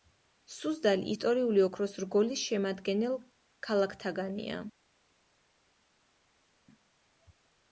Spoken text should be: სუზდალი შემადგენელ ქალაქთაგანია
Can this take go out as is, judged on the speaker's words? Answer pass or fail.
fail